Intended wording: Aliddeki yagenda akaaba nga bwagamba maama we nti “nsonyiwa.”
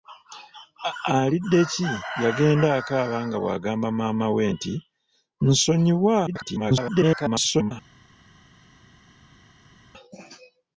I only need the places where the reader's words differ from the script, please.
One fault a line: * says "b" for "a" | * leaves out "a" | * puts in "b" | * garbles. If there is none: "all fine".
* garbles